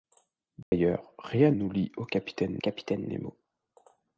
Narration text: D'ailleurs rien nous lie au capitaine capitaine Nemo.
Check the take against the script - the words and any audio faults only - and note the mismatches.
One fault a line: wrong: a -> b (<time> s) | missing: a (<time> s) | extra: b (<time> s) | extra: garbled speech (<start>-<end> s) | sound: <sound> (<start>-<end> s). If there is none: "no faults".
sound: dropout (0.6-0.7 s)